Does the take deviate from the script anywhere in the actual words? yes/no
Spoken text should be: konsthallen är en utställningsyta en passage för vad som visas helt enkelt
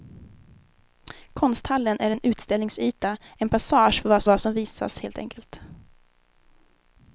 yes